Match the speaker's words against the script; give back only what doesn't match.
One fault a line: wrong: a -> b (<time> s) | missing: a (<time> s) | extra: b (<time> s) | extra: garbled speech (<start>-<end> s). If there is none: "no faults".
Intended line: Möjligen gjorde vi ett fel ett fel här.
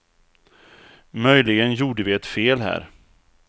missing: ett fel (2.6 s)